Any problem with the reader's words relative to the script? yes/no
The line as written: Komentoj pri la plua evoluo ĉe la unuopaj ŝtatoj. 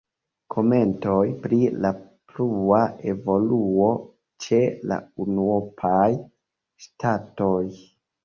no